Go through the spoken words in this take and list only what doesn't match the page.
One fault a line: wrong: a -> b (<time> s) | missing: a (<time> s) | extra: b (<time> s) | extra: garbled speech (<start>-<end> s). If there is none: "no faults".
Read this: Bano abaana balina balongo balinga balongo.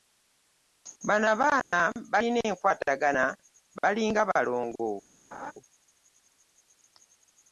wrong: balongo -> enkwatagana (2.5 s)